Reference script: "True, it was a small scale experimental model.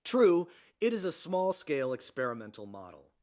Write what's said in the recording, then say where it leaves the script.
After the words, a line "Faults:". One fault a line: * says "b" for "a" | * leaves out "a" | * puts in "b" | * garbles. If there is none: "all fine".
"True, it is a small scale experimental model.
Faults:
* says "is" for "was"